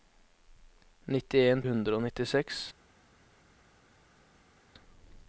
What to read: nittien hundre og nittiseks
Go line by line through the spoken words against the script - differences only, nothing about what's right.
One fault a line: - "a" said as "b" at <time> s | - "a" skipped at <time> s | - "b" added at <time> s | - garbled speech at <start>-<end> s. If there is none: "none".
none